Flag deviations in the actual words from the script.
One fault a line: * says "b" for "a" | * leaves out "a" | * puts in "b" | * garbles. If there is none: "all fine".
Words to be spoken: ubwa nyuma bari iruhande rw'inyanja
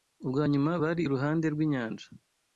all fine